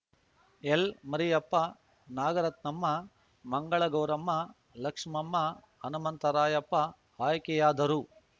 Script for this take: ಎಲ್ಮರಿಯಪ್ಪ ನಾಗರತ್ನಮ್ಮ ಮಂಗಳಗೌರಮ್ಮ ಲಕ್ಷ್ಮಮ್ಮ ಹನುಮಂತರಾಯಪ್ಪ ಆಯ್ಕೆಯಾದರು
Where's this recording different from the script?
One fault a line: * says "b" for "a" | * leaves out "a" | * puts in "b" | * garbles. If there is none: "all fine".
all fine